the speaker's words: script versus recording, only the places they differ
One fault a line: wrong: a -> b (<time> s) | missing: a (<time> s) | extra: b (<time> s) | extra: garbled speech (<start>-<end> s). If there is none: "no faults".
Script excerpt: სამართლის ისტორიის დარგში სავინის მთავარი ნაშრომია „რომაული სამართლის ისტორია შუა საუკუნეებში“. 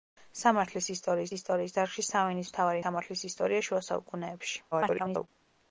extra: ისტორიის (1.4 s)
missing: ნაშრომია რომაული (2.8 s)
extra: garbled speech (4.7-5.3 s)